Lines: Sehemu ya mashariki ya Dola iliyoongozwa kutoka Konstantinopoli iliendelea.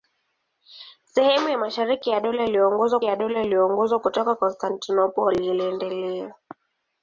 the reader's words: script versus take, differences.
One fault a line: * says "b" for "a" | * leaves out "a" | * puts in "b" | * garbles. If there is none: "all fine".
* puts in "ya Dola iliyoongozwa"